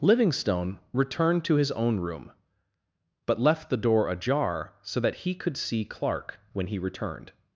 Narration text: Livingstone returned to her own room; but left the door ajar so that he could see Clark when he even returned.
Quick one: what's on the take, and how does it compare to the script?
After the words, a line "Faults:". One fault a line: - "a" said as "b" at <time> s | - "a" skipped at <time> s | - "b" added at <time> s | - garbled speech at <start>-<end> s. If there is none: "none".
Livingstone returned to his own room; but left the door ajar so that he could see Clark when he returned.
Faults:
- "her" said as "his" at 1.6 s
- "even" skipped at 6.8 s